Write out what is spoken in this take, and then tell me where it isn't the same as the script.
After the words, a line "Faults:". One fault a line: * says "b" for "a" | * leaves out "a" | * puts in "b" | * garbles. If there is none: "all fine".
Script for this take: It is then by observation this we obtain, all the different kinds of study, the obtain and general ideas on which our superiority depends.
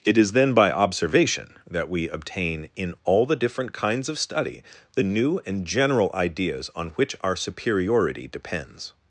It is then by observation that we obtain, in all the different kinds of study, the new and general ideas on which our superiority depends.
Faults:
* says "that" for "this"
* puts in "in"
* says "new" for "obtain"